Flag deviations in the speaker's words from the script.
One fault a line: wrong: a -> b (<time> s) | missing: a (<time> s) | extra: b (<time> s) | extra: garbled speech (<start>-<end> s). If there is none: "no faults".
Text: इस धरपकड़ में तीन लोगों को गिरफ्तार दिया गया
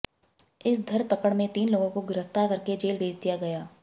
extra: करके जेल भेज (2.5 s)